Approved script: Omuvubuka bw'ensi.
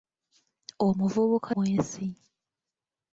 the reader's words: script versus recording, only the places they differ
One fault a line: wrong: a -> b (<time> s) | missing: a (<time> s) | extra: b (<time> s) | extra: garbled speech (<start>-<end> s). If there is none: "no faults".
no faults